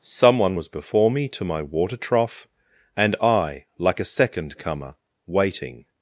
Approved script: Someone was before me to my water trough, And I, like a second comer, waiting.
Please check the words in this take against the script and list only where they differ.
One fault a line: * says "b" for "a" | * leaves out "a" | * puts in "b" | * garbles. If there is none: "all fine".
all fine